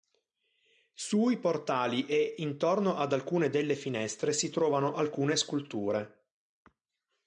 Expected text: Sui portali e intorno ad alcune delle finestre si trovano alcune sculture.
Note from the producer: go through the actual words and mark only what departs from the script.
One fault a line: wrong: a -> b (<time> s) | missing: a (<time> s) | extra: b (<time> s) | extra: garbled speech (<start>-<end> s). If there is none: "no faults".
no faults